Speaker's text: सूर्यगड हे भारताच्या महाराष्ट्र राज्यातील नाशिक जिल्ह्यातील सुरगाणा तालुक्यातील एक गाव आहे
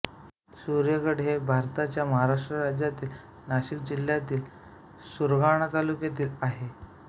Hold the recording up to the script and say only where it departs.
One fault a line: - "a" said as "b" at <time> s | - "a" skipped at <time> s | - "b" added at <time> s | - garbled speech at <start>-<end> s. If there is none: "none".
- "एक गाव" skipped at 6.3 s